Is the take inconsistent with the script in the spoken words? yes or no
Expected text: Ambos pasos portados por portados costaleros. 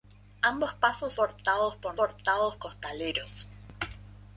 no